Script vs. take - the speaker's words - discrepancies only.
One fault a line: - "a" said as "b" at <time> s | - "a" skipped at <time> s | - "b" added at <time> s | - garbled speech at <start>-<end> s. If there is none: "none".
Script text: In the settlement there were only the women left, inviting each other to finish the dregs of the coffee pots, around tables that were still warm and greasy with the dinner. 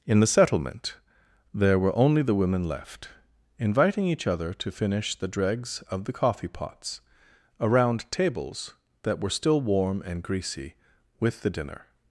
none